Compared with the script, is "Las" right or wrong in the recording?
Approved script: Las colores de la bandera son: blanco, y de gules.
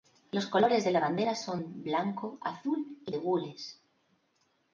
wrong